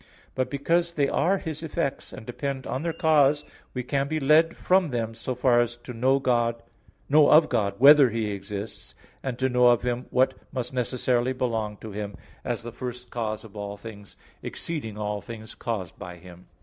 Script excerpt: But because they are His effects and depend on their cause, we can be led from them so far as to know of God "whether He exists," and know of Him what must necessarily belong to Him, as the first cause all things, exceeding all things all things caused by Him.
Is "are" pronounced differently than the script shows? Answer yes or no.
no